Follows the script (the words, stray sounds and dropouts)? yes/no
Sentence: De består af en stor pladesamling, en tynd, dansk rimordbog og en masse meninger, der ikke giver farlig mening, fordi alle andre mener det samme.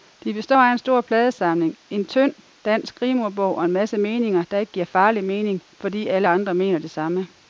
yes